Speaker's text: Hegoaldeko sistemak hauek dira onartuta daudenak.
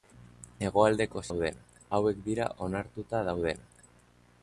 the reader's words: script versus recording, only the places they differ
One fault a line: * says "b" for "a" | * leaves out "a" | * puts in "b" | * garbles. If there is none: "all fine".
* says "daudenak" for "sistemak"